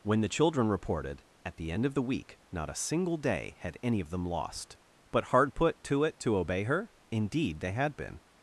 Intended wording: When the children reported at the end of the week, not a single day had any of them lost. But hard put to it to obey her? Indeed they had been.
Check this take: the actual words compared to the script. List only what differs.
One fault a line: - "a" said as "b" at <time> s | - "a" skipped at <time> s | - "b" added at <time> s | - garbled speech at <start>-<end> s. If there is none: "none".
none